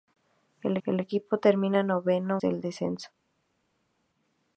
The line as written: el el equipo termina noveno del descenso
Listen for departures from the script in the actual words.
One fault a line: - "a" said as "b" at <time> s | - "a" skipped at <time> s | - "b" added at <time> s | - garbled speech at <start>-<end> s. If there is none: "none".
none